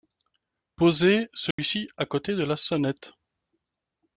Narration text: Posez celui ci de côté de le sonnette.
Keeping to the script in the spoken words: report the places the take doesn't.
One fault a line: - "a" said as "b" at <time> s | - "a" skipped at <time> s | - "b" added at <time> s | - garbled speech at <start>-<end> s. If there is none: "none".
- "de" said as "à" at 1.9 s
- "le" said as "la" at 2.4 s